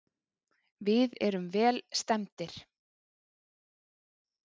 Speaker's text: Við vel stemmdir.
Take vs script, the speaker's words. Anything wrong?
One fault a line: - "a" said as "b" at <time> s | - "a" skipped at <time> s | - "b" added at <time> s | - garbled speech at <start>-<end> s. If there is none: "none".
- "erum" added at 1.3 s